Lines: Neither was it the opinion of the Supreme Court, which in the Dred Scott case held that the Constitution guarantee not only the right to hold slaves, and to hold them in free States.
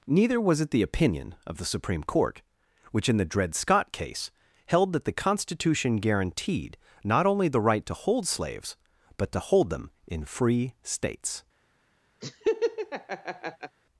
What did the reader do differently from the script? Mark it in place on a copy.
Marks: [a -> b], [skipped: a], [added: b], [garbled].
Neither was it the opinion of the Supreme Court, which in the Dred Scott case held that the Constitution [guarantee -> guaranteed] not only the right to hold slaves, [and -> but] to hold them in free States.